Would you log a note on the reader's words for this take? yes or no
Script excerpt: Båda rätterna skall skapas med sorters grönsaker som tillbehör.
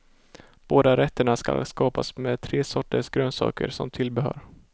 yes